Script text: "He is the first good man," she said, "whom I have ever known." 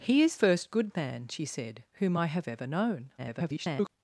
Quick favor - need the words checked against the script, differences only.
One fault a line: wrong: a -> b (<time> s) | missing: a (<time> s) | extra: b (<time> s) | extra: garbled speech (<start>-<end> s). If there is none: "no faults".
missing: the (0.3 s)
extra: garbled speech (3.2-3.9 s)